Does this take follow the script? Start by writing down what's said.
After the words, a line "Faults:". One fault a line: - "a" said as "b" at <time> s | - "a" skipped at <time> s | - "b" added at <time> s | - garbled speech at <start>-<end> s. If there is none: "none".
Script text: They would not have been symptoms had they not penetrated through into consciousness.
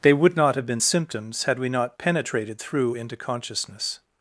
They would not have been symptoms had we not penetrated through into consciousness.
Faults:
- "they" said as "we" at 1.6 s